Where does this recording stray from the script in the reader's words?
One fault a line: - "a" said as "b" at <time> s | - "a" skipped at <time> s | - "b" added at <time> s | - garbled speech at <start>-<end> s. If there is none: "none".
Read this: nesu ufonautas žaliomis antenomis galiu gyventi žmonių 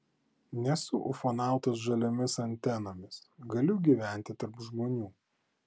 - "tarp" added at 4.4 s